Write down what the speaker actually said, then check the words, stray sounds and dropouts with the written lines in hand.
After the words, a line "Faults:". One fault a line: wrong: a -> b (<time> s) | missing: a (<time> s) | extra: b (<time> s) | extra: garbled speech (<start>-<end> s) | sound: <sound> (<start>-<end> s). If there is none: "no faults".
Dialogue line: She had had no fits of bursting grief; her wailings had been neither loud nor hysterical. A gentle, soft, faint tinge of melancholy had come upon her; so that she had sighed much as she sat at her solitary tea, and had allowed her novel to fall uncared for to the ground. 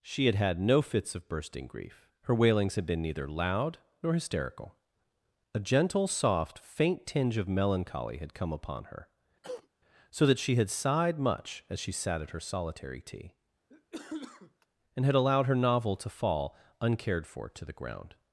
She had had no fits of bursting grief; her wailings had been neither loud nor hysterical. A gentle, soft, faint tinge of melancholy had come upon her; so that she had sighed much as she sat at her solitary tea, and had allowed her novel to fall uncared for to the ground.
Faults:
sound: cough (9.4-9.7 s)
sound: cough (13.7-14.7 s)